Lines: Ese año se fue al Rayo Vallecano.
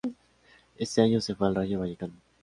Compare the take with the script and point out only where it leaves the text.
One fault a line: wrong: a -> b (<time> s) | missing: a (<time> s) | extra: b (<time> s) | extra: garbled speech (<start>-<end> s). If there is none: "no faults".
no faults